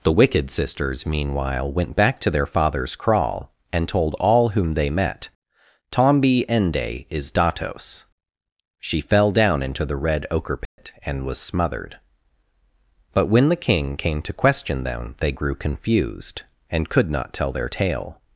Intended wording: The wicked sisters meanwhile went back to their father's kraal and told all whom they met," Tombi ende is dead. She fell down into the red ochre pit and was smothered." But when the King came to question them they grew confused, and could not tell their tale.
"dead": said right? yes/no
no